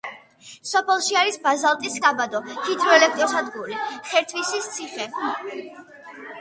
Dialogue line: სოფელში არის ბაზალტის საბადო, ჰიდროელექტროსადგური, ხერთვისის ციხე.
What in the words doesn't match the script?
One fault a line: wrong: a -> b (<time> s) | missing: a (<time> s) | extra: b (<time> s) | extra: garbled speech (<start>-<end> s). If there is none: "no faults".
no faults